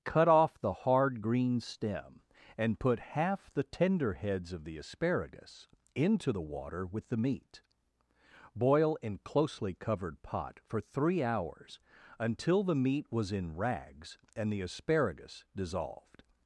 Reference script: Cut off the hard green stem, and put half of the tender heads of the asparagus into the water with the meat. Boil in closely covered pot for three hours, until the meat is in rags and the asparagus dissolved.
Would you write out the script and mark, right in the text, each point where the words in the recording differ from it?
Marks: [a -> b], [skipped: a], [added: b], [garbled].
Cut off the hard green stem, and put half [skipped: of] the tender heads of the asparagus into the water with the meat. Boil in closely covered pot for three hours, until the meat [is -> was] in rags and the asparagus dissolved.